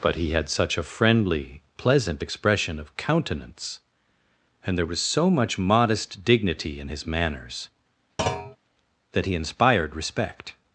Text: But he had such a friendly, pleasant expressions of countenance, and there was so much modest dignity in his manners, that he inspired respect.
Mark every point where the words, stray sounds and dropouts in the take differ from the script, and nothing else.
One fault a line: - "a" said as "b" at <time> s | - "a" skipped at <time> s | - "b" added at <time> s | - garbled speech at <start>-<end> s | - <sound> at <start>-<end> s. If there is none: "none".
- "expressions" said as "expression" at 2.2 s
- thud at 8.2-8.6 s